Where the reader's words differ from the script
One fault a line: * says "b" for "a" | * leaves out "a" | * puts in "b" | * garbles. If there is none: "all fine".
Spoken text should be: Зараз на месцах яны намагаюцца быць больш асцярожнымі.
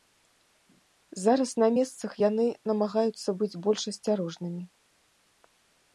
all fine